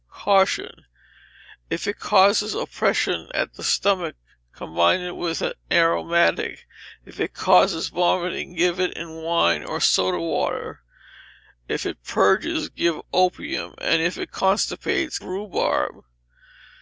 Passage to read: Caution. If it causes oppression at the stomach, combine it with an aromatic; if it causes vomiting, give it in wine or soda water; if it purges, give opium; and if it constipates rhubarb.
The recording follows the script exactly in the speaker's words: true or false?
true